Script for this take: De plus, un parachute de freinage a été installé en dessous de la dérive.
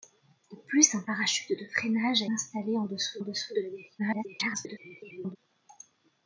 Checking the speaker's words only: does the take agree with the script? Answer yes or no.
no